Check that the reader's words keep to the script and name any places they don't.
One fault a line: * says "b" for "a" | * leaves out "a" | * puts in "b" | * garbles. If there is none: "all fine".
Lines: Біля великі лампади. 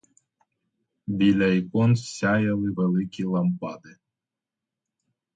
* puts in "ікон сяяли"